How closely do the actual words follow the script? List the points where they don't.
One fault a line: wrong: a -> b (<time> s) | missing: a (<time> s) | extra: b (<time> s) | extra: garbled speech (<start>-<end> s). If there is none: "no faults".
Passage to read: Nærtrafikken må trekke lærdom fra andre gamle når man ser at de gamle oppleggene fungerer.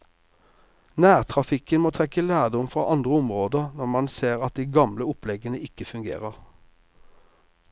wrong: gamle -> områder (3.2 s)
extra: ikke (5.7 s)